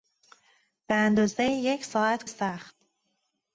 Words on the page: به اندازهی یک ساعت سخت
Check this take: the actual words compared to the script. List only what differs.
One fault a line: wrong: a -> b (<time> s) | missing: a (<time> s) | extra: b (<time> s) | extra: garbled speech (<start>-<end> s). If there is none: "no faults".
no faults